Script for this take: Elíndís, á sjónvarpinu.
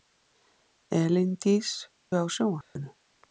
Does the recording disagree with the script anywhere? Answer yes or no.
no